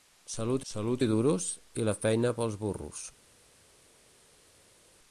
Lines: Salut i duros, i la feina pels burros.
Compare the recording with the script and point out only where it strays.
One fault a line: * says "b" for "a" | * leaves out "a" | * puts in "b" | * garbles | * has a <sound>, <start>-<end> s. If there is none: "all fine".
* puts in "salut"